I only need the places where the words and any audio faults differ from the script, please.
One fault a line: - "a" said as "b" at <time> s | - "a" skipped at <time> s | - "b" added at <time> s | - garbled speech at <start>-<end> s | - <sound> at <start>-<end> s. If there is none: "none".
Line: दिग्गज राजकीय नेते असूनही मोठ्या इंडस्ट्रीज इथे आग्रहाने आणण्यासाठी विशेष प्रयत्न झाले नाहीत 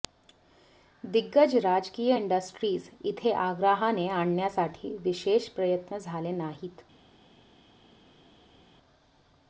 - "नेते असूनही मोठ्या" skipped at 2.1 s